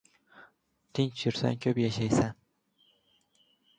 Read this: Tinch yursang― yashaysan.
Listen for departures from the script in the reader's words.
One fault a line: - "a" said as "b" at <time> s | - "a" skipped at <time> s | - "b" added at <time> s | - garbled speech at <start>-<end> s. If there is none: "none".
- "ko‘p" added at 1.6 s